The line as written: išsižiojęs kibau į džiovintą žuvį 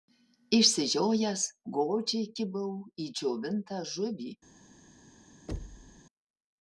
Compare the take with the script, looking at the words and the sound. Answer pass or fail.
fail